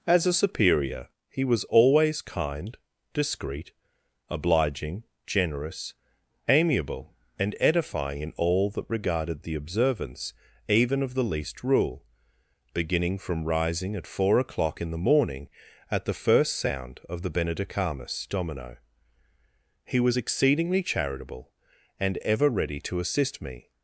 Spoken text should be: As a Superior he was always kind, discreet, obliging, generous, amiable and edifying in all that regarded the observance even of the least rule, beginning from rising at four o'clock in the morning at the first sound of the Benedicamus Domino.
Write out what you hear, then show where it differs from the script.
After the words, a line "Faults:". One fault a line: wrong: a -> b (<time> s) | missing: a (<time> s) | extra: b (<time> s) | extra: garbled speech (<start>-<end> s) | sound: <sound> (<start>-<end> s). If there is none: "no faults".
As a Superior he was always kind, discreet, obliging, generous, amiable and edifying in all that regarded the observance even of the least rule, beginning from rising at four o'clock in the morning at the first sound of the Benedicamus Domino. He was exceedingly charitable and ever ready to assist me
Faults:
extra: He was exceedingly charitable and ever ready to assist me (19.8 s)